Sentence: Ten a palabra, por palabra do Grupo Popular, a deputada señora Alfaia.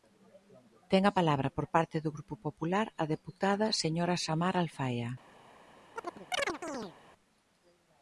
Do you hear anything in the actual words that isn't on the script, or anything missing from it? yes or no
yes